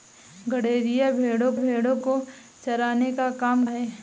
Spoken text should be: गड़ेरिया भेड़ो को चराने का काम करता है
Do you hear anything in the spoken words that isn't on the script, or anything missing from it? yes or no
yes